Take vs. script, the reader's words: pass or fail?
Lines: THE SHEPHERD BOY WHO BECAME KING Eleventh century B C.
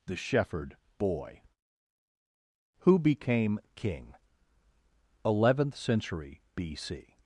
pass